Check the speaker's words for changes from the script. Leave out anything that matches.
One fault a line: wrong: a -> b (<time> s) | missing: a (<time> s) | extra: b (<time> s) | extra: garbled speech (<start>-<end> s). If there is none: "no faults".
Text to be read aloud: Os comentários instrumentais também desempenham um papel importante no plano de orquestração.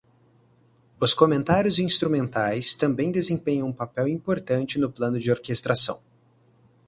no faults